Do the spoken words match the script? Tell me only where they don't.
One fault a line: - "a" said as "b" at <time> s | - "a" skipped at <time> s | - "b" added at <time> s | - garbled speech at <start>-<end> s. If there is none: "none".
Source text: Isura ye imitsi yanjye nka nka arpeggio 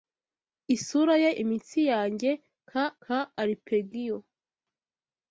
none